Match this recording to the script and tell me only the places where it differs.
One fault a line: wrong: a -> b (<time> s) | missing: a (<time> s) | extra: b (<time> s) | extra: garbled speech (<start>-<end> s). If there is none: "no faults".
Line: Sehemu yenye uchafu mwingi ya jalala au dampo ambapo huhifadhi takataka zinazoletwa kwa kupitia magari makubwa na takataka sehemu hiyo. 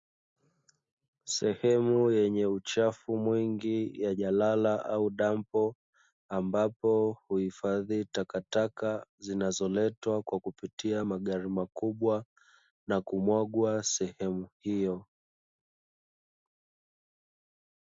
wrong: takataka -> kumwagwa (13.0 s)